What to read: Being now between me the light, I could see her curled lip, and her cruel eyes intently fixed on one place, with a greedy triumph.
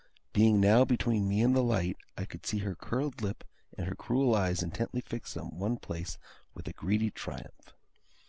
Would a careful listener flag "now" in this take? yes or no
no